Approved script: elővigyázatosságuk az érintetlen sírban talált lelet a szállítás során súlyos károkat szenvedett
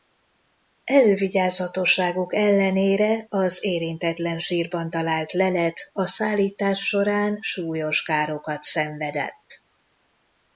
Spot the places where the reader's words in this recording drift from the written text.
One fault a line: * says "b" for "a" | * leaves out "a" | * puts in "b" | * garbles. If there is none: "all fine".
* puts in "ellenére"